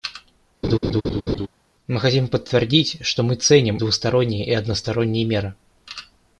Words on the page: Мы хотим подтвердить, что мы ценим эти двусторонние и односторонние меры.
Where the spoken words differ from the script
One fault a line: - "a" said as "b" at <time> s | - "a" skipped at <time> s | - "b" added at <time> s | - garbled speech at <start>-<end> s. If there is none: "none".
- "эти" skipped at 3.8 s